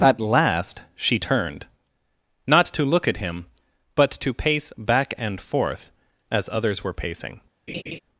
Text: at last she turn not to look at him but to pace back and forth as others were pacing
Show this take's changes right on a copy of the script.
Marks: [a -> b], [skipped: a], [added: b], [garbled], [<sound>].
at last she [turn -> turned] not to look at him but to pace back and forth as others were pacing [laugh]